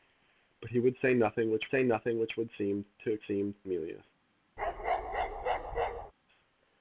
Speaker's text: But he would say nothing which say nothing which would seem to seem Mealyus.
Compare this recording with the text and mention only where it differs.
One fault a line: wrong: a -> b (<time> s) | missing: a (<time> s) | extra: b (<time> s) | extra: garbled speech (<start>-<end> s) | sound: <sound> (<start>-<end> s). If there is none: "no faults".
sound: bark (4.6-6.1 s)